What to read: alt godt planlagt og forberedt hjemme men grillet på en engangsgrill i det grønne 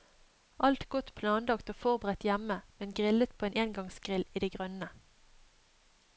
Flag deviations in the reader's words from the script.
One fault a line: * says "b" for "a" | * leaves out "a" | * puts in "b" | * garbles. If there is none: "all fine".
all fine